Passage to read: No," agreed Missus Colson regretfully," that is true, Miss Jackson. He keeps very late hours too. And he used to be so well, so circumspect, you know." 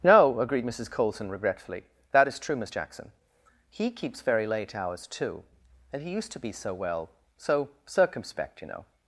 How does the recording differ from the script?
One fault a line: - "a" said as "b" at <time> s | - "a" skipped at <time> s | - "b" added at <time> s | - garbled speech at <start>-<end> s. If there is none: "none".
none